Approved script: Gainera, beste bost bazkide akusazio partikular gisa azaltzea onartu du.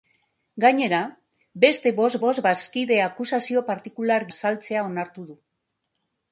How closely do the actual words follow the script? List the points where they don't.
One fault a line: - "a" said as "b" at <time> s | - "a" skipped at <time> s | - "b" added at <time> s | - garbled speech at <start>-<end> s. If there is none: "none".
- "bost" added at 2.3 s
- "gisa" skipped at 4.3 s